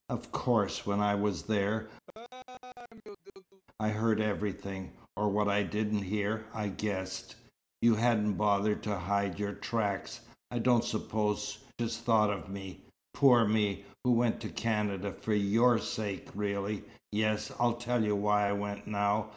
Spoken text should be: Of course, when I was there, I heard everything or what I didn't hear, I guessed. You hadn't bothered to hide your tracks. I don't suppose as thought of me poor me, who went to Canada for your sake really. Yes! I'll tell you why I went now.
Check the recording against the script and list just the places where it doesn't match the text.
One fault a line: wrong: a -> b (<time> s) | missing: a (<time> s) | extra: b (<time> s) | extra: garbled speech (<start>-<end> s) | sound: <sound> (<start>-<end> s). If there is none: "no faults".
sound: laugh (2.1-3.6 s)